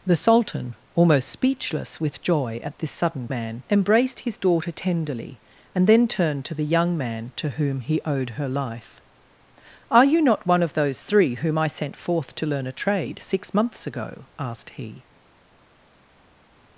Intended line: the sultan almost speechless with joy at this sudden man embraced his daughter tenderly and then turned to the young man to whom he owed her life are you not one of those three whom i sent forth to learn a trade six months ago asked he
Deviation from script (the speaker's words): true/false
false